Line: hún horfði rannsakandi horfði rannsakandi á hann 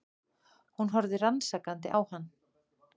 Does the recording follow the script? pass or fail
fail